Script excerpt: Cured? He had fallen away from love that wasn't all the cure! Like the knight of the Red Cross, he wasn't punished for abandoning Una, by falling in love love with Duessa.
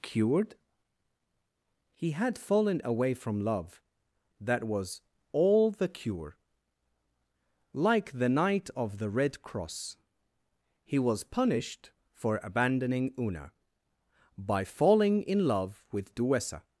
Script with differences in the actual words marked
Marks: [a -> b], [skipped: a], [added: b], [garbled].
Cured? He had fallen away from love that [wasn't -> was] all the cure! Like the knight of the Red Cross, he [wasn't -> was] punished for abandoning Una, by falling in love [skipped: love] with Duessa.